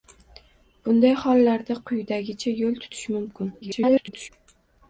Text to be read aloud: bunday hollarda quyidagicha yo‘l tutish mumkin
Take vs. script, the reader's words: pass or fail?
fail